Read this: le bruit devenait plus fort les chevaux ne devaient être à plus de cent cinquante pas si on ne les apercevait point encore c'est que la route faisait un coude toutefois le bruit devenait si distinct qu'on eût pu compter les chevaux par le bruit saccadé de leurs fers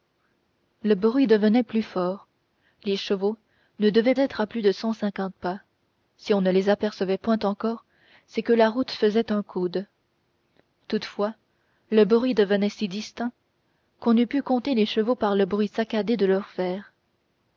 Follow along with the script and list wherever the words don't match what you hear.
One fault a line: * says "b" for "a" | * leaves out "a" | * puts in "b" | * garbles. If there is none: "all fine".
all fine